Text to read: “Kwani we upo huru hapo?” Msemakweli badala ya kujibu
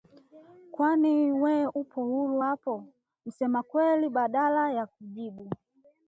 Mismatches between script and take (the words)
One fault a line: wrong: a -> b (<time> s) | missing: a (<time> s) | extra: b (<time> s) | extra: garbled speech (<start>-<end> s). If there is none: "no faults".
no faults